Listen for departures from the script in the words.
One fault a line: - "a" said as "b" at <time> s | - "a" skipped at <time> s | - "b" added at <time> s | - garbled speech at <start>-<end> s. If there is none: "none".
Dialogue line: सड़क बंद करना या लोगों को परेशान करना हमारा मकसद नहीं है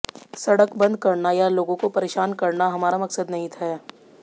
none